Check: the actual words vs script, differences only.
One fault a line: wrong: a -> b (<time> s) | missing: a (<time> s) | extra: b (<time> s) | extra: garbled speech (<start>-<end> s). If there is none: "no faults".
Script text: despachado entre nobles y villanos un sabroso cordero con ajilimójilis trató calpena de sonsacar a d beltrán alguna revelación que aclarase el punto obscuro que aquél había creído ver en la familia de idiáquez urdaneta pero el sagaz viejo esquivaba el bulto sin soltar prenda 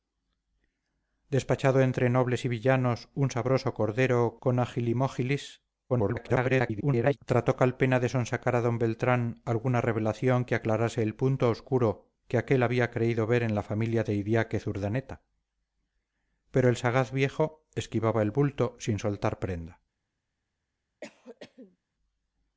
extra: garbled speech (5.9-7.2 s)